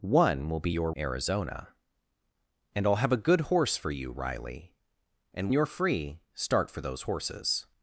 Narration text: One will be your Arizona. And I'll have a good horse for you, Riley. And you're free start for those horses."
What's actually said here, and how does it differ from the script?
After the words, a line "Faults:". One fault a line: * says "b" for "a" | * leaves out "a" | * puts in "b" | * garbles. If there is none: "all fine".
One will be your Arizona. And I'll have a good horse for you, Riley. And you're free start for those horses."
Faults:
all fine